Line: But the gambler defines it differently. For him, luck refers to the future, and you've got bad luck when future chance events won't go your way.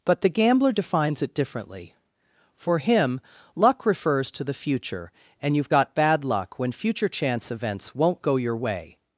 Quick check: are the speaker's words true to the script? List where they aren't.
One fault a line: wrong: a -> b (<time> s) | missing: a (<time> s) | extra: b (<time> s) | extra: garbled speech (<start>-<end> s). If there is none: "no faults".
no faults